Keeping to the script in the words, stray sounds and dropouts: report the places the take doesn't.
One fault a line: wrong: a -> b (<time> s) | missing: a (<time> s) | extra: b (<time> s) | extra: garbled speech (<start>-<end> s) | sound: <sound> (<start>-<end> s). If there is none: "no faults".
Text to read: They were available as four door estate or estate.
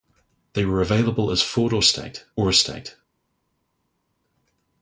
no faults